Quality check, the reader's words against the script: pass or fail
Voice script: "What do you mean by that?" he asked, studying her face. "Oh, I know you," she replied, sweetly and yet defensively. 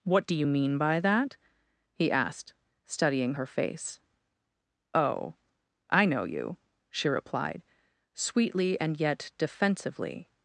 pass